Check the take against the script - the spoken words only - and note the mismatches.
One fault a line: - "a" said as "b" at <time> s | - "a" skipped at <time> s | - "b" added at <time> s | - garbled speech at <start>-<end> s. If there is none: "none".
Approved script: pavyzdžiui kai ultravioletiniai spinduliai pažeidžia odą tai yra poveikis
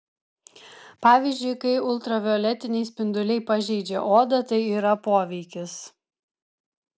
none